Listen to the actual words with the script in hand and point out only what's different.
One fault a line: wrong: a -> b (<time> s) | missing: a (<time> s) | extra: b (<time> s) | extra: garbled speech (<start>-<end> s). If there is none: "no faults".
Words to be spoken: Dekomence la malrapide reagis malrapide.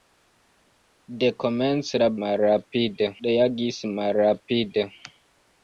no faults